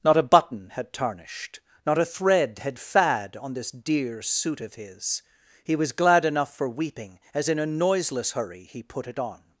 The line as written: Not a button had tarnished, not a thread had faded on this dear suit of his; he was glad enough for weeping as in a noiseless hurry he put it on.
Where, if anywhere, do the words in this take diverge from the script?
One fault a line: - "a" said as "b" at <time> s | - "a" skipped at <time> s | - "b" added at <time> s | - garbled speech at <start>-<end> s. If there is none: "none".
- "faded" said as "fad" at 2.8 s